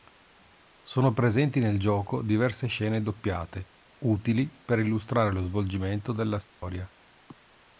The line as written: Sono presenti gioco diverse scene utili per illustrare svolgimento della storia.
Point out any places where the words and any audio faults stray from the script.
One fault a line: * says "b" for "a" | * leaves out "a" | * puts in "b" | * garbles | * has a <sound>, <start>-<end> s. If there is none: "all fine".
* puts in "nel"
* puts in "doppiate"
* puts in "lo"
* has a dropout, 6.5-6.6 s